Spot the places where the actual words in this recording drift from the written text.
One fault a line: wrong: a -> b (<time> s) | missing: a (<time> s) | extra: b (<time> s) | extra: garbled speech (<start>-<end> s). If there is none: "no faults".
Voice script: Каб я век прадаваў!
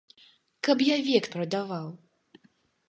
no faults